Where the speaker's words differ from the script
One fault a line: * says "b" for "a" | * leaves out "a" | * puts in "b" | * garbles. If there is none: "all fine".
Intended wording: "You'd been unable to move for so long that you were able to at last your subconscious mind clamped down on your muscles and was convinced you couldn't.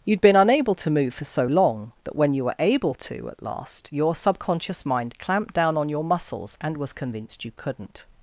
* puts in "when"